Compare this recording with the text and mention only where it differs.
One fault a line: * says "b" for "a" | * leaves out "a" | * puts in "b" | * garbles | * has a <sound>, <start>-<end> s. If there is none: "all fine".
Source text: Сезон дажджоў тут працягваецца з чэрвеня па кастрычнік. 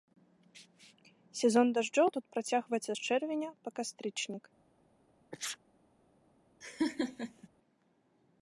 * has a sneeze, 5.3-5.6 s
* has a laugh, 6.6-7.5 s